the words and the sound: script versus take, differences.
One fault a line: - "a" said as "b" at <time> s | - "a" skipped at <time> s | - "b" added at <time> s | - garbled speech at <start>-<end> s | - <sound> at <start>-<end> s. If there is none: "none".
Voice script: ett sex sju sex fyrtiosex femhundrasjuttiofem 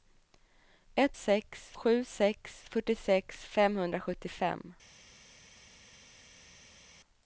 none